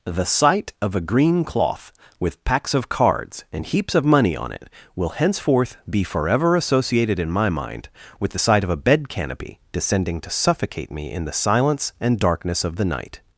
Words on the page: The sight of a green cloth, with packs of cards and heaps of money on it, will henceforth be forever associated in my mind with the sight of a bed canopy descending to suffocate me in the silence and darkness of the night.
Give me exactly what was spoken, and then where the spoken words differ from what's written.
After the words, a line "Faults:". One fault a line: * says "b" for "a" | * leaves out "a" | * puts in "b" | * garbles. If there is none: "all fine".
The sight of a green cloth, with packs of cards and heaps of money on it, will henceforth be forever associated in my mind with the sight of a bed canopy descending to suffocate me in the silence and darkness of the night.
Faults:
all fine